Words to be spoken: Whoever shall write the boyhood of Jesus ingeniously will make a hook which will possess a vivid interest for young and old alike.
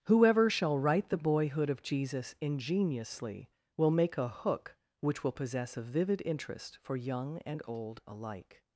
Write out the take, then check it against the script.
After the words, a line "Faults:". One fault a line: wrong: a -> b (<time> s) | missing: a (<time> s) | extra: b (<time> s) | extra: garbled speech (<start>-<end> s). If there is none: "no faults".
Whoever shall write the boyhood of Jesus ingeniously will make a hook which will possess a vivid interest for young and old alike.
Faults:
no faults